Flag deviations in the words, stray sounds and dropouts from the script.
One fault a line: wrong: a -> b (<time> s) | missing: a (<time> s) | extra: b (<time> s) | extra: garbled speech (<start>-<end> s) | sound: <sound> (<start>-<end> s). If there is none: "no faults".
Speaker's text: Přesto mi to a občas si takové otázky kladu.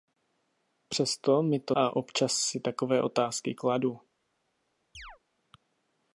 sound: chirp (4.9-5.2 s)